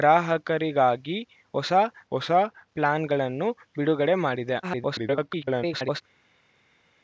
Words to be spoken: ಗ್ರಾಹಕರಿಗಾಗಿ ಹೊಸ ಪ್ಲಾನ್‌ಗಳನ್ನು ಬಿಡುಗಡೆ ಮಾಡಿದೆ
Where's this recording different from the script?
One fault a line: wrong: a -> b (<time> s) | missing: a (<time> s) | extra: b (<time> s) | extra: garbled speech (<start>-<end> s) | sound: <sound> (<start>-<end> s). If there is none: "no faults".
extra: ಹೊಸ (2.1 s)
extra: garbled speech (4.6-6.0 s)